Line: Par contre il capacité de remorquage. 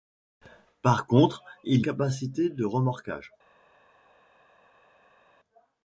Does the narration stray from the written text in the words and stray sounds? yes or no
no